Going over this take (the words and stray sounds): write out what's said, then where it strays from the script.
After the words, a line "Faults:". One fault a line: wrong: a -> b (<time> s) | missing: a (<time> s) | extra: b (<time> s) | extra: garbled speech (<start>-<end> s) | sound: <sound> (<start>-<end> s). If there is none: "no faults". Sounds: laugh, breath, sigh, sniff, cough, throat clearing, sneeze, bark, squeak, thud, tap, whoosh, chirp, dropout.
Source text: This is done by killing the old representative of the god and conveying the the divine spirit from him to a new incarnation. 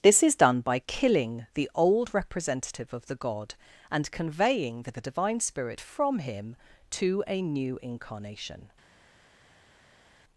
This is done by killing the old representative of the god and conveying the the divine spirit from him to a new incarnation.
Faults:
no faults